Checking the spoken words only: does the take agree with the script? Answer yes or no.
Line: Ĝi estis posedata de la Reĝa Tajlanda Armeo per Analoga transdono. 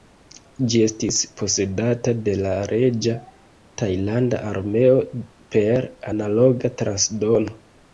yes